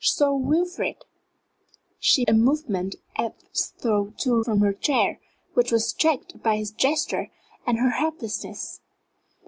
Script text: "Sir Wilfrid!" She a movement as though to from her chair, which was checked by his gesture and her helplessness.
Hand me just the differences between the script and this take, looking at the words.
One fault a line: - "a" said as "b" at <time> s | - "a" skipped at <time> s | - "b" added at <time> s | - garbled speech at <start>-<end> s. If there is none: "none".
none